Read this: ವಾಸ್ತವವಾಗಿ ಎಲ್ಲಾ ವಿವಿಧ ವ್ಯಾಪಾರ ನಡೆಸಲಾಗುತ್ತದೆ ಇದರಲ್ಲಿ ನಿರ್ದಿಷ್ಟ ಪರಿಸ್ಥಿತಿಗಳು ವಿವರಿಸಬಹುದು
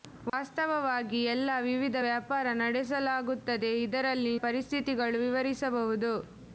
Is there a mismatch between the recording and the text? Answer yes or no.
yes